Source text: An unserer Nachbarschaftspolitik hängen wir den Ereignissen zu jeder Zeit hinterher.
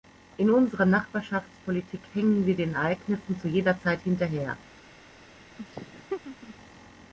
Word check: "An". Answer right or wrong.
wrong